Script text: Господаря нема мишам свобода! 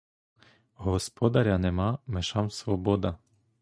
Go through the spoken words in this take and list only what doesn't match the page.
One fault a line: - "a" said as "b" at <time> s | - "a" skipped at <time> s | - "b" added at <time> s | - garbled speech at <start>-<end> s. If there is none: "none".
none